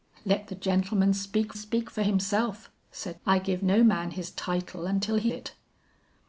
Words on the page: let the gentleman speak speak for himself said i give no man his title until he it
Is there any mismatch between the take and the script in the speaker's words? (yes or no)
no